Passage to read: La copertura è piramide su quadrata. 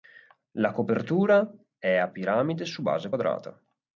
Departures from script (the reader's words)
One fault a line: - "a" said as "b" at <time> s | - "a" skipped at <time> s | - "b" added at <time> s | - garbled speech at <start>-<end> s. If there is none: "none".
- "a" added at 2.0 s
- "base" added at 2.8 s